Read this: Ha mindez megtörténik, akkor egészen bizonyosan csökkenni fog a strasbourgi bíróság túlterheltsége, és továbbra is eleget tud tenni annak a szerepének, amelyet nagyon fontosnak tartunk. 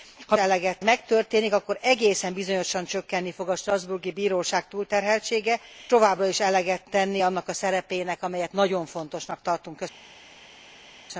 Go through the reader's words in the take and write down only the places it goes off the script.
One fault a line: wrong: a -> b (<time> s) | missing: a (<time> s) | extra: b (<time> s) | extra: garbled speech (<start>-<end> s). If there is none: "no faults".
wrong: mindez -> eleget (0.4 s)
missing: és (5.6 s)
missing: tud (6.8 s)